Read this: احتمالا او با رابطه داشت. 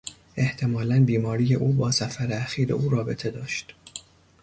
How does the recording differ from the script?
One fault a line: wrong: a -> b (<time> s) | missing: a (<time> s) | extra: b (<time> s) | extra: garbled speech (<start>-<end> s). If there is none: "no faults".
extra: بیماری (1.1 s)
extra: سفر اخیر او (1.9 s)